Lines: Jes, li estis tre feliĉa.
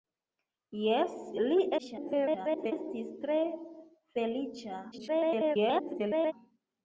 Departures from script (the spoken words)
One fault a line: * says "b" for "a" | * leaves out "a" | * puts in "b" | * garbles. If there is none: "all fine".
* garbles
* garbles